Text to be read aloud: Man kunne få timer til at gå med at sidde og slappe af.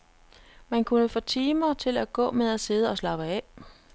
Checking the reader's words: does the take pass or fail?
pass